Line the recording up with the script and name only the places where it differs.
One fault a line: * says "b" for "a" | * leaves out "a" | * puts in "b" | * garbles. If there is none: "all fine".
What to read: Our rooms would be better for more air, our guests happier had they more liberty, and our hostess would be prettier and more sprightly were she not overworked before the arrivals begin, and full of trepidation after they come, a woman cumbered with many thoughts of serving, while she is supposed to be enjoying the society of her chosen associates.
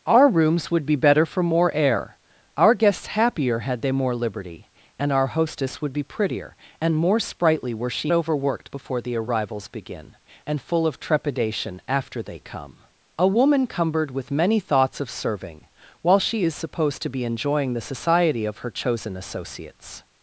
* leaves out "not"